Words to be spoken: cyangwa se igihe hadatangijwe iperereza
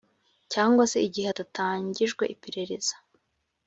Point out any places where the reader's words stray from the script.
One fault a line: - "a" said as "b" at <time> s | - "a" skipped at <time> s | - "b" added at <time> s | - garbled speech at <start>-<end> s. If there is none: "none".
none